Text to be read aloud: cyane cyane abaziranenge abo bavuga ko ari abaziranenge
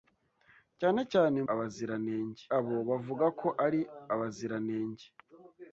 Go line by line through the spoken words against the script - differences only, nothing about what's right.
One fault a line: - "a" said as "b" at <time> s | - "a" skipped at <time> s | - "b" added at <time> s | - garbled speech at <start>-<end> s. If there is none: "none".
none